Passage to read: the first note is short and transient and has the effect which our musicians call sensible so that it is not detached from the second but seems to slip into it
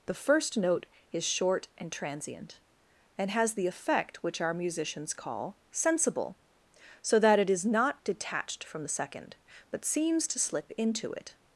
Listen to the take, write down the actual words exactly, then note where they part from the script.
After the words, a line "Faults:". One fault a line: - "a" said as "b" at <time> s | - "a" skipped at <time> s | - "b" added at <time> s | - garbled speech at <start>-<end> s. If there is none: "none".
the first note is short and transient and has the effect which our musicians call sensible so that it is not detached from the second but seems to slip into it
Faults:
none